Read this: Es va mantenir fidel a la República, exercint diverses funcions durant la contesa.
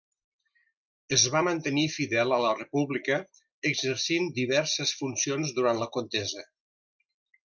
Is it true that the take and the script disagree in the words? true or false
false